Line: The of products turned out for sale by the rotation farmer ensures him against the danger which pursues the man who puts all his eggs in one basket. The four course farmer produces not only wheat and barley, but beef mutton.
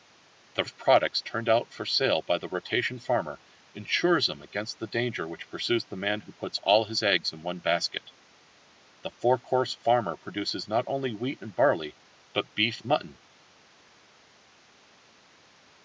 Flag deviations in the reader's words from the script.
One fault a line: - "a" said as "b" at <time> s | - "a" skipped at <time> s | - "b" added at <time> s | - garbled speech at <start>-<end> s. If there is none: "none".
none